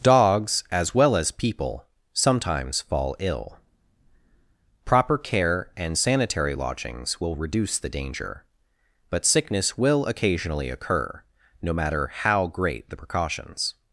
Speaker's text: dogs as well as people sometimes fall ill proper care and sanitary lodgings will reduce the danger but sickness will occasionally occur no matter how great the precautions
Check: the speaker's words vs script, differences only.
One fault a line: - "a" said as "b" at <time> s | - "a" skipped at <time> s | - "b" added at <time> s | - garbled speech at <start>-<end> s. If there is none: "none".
none